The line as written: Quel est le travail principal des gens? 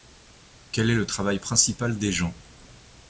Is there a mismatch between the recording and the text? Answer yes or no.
no